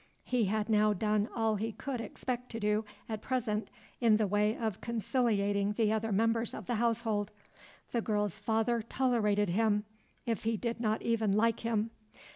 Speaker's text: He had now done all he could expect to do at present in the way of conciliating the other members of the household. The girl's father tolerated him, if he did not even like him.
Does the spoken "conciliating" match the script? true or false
true